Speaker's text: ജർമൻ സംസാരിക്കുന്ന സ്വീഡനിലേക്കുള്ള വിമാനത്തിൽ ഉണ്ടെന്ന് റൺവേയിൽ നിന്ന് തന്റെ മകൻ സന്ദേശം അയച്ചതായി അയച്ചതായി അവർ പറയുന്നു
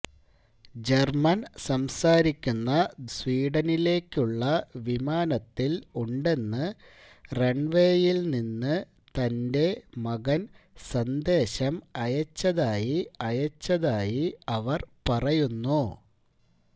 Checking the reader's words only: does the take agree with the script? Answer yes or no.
yes